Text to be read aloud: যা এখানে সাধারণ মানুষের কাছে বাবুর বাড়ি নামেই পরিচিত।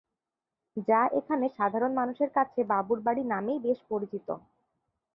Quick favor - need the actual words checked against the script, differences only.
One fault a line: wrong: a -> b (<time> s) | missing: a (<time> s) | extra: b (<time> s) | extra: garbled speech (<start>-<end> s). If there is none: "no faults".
extra: বেশ (3.6 s)